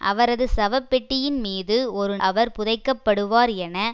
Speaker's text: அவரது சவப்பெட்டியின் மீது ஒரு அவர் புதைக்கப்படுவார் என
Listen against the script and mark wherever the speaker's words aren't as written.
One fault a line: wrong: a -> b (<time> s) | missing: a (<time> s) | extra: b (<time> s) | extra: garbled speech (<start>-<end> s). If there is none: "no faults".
no faults